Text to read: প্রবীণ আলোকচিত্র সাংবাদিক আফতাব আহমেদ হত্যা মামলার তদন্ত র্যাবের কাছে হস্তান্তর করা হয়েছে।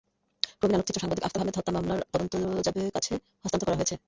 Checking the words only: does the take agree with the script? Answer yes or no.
yes